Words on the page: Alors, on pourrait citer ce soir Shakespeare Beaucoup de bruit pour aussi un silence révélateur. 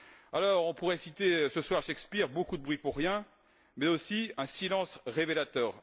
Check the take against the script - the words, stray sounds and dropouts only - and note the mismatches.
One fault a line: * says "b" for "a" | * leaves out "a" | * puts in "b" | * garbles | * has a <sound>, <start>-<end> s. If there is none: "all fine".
* puts in "rien mais"